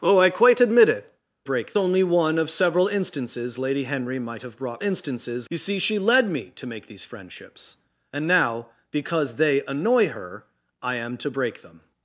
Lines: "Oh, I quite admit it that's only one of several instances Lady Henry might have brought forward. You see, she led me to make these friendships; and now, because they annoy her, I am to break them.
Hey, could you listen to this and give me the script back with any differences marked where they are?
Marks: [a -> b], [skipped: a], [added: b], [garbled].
"Oh, I quite admit it [that's -> break] only one of several instances Lady Henry might have brought [forward. -> instances] You see, she led me to make these friendships; and now, because they annoy her, I am to break them.